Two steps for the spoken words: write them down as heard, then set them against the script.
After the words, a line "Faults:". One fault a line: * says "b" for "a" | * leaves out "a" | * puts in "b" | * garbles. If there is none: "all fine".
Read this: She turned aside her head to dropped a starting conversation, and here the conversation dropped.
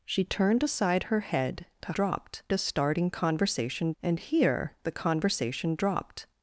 She turned aside her head to dropped a starting conversation, and here the conversation dropped.
Faults:
all fine